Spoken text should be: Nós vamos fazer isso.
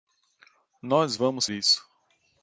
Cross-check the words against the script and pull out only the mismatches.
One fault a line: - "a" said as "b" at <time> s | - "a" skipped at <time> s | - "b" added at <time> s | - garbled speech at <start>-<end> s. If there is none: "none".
- "fazer" skipped at 1.5 s